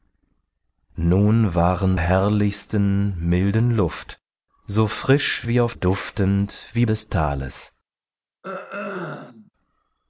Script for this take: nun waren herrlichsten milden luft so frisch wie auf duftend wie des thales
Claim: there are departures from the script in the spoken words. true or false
false